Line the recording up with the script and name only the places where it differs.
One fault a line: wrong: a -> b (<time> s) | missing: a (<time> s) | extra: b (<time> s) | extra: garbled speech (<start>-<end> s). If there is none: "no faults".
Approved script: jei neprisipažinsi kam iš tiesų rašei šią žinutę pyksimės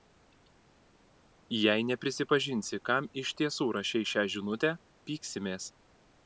no faults